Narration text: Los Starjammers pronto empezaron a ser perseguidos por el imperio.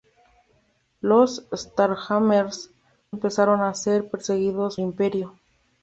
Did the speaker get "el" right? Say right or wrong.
wrong